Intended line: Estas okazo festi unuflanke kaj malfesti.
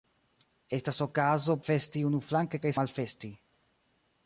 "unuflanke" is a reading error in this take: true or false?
false